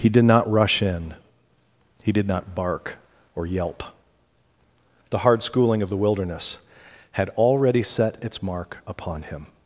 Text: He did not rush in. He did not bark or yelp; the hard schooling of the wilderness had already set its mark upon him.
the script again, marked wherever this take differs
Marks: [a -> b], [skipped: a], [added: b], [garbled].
He did not rush in. He did not bark or yelp; the hard schooling of the wilderness had already set its mark upon him.